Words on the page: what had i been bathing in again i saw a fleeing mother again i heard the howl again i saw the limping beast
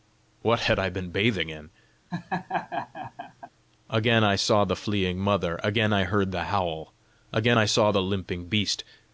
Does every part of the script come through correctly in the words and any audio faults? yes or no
no